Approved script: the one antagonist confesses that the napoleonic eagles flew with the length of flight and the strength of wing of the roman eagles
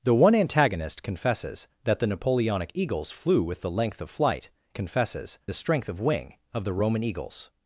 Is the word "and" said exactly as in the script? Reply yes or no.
no